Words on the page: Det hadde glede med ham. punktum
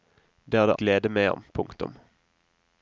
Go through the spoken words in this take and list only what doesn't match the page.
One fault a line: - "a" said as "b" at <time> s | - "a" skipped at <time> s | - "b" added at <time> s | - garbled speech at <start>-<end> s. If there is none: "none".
none